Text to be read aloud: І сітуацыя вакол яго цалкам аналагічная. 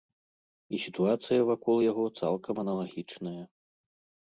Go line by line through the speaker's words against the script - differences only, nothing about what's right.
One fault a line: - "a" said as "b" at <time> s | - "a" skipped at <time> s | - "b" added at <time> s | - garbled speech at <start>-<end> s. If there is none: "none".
none